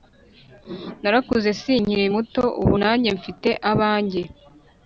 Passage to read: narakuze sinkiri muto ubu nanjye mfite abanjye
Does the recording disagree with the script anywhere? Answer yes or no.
no